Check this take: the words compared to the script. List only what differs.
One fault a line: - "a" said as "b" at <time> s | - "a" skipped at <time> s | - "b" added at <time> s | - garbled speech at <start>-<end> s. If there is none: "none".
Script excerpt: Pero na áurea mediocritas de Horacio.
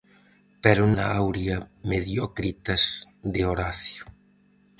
none